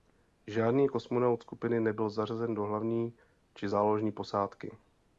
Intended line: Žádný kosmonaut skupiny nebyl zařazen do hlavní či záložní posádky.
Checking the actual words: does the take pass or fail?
pass